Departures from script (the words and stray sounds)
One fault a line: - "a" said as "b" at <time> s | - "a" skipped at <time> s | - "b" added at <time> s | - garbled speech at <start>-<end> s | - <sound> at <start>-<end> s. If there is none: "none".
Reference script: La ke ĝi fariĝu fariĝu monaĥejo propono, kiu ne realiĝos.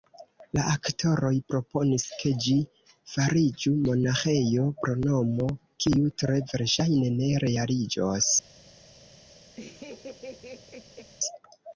- "aktoroj proponis" added at 0.8 s
- "fariĝu" skipped at 3.7 s
- "tre verŝajne" added at 6.2 s
- laugh at 9.6-11.1 s